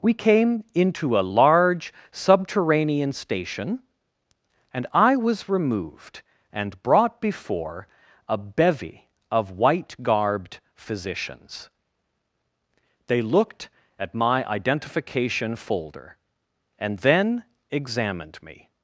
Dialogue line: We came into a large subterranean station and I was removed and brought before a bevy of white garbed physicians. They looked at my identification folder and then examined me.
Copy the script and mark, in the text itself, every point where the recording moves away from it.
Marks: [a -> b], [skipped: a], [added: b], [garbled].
We came into a large subterranean station and I was removed and brought before a bevy of white garbed physicians. They looked at my identification folder and then examined me.